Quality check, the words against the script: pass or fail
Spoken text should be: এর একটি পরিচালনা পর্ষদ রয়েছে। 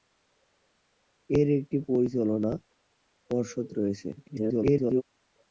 fail